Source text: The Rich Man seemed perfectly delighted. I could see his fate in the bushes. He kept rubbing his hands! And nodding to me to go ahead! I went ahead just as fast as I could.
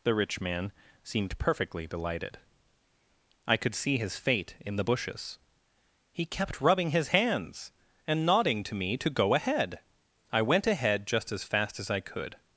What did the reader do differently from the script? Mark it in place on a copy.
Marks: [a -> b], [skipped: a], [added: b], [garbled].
The Rich Man seemed perfectly delighted. I could see his fate in the bushes. He kept rubbing his hands! And nodding to me to go ahead! I went ahead just as fast as I could.